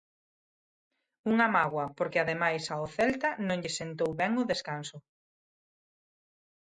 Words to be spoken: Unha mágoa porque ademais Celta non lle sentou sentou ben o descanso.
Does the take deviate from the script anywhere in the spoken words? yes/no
yes